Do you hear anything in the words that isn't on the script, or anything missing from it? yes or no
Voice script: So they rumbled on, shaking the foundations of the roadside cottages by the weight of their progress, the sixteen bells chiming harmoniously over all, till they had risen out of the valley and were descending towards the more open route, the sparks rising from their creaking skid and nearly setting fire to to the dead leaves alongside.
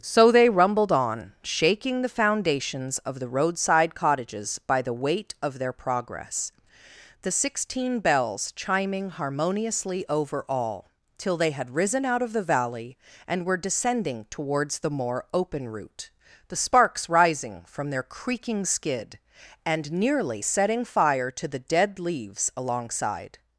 yes